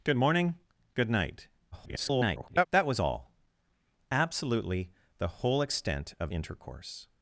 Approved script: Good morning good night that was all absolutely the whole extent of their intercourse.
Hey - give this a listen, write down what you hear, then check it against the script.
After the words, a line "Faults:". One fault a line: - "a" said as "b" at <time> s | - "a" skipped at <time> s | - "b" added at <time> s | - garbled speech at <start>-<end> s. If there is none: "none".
Good morning good night [garbled] that was all absolutely the whole extent of intercourse.
Faults:
- garbled speech at 1.7-2.7 s
- "their" skipped at 6.3 s